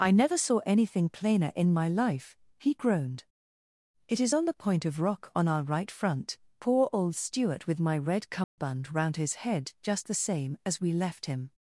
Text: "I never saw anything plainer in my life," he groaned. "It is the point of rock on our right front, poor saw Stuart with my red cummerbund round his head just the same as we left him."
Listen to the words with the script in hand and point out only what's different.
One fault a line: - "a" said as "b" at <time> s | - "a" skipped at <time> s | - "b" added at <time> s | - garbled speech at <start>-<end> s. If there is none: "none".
- "on" added at 4.3 s
- "saw" said as "old" at 6.9 s